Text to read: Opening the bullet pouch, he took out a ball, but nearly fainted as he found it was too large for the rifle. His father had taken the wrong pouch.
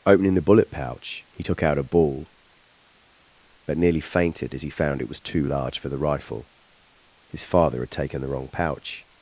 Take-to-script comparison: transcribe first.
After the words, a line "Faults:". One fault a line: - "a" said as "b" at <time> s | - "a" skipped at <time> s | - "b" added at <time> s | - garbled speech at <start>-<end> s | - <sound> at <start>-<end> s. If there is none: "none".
Opening the bullet pouch, he took out a ball, but nearly fainted as he found it was too large for the rifle. His father had taken the wrong pouch.
Faults:
none